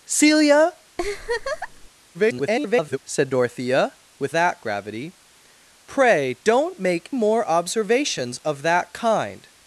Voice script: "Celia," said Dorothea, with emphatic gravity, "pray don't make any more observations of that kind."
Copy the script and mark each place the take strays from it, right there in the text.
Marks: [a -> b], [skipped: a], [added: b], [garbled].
"Celia," [garbled] said Dorothea, with [emphatic -> that] gravity, "pray don't make [skipped: any] more observations of that kind."